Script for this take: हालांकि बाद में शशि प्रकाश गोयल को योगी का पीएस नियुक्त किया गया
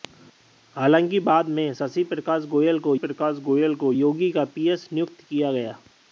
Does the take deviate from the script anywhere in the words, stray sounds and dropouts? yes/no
yes